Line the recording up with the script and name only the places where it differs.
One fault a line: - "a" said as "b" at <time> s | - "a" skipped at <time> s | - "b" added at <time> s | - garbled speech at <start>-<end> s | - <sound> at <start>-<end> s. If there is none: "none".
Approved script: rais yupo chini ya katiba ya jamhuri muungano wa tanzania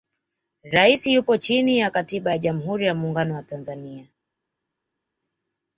- "ya" added at 2.8 s